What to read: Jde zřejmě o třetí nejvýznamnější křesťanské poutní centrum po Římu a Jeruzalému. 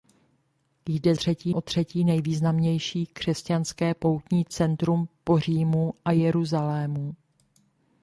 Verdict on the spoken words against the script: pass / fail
fail